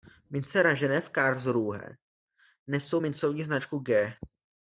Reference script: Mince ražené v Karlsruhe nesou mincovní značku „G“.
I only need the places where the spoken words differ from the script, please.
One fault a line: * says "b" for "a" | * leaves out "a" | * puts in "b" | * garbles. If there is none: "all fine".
all fine